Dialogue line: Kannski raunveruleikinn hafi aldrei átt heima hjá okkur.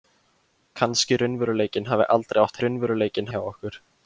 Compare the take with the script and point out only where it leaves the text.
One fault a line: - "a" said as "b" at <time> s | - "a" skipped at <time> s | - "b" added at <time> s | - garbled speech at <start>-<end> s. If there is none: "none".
- "heima" said as "raunveruleikinn" at 2.6 s